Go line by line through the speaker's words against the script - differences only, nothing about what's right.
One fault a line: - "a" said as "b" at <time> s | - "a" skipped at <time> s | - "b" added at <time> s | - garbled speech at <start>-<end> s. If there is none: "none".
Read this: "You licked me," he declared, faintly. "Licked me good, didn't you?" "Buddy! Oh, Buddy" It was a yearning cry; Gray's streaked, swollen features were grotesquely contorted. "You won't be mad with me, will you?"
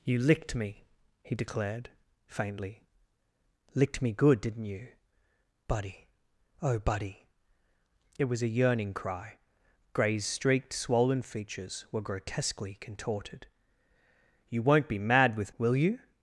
- "me" skipped at 15.6 s